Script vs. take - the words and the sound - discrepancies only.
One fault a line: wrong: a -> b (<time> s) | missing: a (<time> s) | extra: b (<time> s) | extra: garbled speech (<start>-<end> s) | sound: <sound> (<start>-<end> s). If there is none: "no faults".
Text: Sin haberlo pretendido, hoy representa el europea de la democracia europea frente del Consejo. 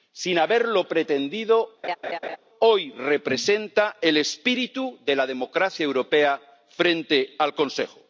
sound: laugh (1.8-2.4 s)
wrong: europea -> espíritu (4.2 s)
wrong: del -> al (7.4 s)